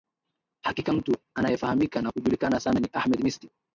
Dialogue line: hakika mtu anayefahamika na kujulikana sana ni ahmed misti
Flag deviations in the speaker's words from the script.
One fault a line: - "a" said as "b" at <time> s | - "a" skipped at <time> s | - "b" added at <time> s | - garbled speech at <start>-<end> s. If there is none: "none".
none